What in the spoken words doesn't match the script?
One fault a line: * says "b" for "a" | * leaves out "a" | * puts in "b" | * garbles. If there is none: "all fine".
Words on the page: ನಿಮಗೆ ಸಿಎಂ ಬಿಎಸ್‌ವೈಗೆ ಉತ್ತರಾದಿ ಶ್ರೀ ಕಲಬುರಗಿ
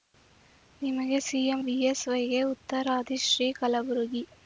all fine